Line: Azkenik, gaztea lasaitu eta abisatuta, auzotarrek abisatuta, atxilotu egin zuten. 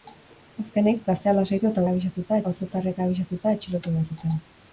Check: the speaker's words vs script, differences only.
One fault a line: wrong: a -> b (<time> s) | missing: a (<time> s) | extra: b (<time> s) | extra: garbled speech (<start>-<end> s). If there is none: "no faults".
no faults